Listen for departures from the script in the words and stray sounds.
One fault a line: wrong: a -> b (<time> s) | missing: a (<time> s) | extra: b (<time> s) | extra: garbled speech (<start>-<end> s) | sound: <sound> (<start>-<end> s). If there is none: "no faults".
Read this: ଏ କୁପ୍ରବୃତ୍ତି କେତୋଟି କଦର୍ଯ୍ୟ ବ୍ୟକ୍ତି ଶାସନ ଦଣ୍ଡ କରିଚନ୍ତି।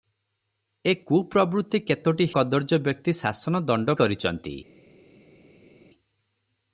no faults